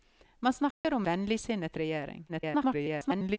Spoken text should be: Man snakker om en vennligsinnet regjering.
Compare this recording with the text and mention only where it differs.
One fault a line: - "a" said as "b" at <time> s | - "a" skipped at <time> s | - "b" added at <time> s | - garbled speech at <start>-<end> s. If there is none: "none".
- "en" skipped at 1.1 s
- garbled speech at 2.3-3.4 s